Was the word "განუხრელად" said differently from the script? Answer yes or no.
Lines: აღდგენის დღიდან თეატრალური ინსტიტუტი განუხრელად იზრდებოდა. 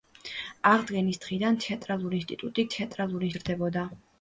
yes